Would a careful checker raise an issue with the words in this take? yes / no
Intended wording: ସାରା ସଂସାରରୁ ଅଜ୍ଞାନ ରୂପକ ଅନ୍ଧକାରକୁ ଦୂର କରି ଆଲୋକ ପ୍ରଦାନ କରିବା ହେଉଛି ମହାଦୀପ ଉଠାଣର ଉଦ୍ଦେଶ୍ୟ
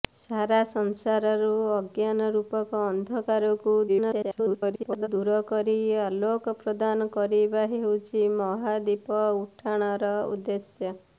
yes